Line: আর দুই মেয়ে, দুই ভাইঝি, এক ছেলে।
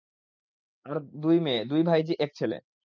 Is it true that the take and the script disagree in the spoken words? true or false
false